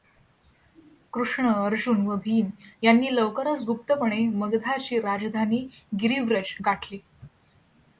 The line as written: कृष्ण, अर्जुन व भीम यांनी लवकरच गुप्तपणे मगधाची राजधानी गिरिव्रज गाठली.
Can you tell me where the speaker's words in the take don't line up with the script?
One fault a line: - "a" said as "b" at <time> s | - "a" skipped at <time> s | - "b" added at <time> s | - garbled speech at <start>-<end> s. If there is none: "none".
none